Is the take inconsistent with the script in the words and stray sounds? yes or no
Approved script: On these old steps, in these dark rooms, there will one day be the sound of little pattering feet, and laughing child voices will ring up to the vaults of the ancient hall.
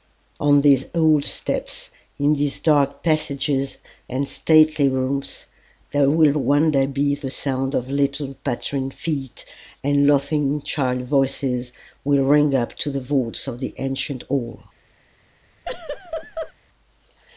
yes